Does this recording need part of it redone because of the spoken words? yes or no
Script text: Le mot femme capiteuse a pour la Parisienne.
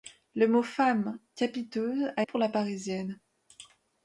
no